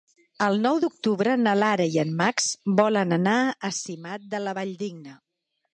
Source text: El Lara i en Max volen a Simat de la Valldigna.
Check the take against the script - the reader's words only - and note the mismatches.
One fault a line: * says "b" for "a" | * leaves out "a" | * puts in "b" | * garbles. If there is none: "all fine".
* puts in "nou d'octubre na"
* puts in "anar"